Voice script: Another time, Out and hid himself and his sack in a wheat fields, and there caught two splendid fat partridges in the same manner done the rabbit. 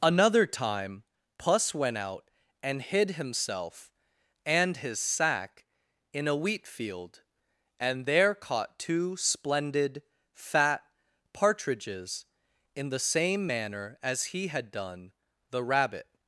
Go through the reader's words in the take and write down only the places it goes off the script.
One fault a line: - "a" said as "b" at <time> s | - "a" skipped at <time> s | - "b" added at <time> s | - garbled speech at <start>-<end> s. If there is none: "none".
- "Puss went" added at 1.4 s
- "fields" said as "field" at 6.7 s
- "as he had" added at 14.0 s